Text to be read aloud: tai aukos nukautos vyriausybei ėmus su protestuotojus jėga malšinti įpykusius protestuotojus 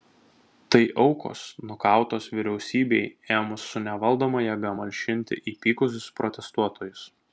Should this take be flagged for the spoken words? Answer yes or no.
yes